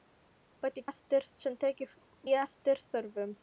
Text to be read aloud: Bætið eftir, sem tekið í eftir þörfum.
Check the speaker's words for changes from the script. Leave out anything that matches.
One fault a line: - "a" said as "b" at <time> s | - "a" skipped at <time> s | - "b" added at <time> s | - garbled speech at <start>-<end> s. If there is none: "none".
none